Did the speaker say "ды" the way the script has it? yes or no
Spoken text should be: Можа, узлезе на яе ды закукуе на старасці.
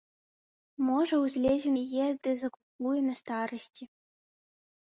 yes